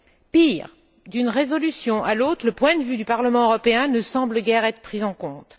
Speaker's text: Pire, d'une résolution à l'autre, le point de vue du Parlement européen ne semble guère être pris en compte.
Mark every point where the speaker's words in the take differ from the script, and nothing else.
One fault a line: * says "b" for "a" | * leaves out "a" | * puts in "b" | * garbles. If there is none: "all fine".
all fine